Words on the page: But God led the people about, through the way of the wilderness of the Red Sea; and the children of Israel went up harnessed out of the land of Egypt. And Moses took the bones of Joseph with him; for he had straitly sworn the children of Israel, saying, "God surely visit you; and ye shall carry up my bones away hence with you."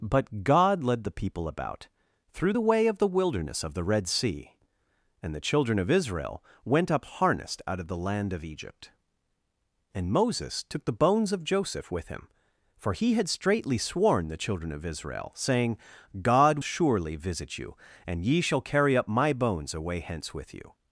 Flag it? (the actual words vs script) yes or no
no